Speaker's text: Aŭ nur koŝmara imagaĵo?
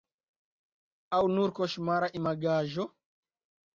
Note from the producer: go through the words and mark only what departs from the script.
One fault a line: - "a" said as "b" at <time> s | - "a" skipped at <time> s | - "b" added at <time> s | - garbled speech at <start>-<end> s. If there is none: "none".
none